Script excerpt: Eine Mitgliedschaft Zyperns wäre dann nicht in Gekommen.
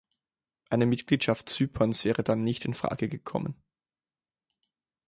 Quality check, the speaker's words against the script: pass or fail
fail